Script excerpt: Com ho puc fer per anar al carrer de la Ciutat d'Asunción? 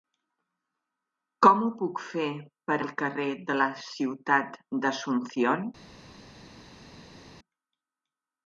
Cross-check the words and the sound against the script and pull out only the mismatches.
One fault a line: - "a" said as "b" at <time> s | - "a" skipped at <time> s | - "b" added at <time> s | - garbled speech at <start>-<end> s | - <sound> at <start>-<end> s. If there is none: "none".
- "anar" skipped at 2.8 s